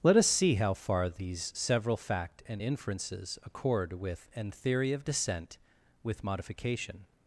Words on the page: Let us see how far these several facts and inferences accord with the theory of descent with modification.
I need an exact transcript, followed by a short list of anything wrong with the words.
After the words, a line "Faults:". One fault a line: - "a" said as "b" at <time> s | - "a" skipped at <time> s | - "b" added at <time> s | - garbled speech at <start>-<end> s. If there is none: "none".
Let us see how far these several fact and inferences accord with an theory of descent with modification.
Faults:
- "facts" said as "fact" at 2.0 s
- "the" said as "an" at 4.4 s